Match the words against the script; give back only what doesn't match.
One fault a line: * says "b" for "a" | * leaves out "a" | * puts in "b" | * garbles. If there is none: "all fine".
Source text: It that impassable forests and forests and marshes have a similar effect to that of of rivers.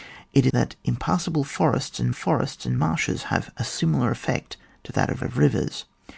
all fine